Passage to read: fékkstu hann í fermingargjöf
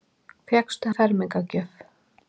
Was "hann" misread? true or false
true